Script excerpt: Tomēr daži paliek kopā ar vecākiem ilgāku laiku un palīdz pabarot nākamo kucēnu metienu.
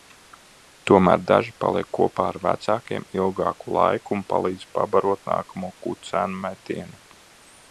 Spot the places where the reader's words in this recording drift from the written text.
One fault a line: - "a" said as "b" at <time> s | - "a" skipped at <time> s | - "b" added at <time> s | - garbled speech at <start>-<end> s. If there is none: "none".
none